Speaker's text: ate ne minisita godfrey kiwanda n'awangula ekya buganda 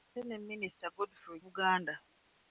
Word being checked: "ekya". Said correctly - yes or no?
no